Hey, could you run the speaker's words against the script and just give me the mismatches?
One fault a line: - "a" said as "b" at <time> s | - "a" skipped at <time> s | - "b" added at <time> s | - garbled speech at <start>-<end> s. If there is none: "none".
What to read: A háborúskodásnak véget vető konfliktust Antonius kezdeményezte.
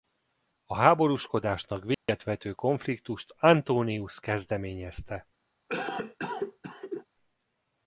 none